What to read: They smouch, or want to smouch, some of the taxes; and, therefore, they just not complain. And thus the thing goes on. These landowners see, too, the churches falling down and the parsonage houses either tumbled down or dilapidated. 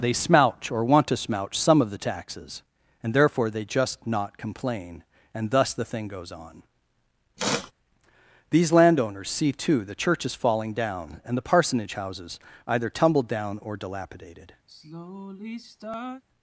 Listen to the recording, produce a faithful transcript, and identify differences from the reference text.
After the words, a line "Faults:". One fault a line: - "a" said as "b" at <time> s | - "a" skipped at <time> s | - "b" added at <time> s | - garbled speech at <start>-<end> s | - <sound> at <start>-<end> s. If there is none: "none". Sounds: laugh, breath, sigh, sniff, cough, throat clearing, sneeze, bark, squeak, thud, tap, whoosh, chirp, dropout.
They smouch, or want to smouch, some of the taxes; and, therefore, they just not complain. And thus the thing goes on. These landowners see, too, the churches falling down and the parsonage houses either tumbled down or dilapidated.
Faults:
- sniff at 7.4-7.7 s
- sigh at 14.7-16.2 s